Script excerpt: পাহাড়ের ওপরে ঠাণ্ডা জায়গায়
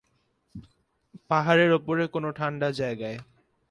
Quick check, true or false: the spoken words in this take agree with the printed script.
false